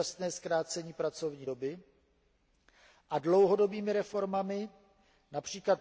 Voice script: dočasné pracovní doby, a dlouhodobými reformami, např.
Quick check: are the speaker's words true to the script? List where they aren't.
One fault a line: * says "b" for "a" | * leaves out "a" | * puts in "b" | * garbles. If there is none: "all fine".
* puts in "zkrácení"